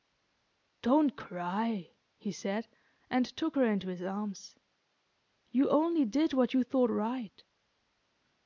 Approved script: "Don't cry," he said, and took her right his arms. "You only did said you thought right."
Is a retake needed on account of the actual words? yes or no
yes